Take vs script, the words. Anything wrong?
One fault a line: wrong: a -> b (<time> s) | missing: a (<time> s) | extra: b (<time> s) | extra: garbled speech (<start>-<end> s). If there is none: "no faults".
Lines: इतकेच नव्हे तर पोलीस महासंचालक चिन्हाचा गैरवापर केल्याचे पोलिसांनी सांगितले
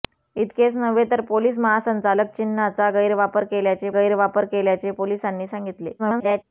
extra: गैरवापर केल्याचे (3.9 s)
extra: garbled speech (6.0-6.4 s)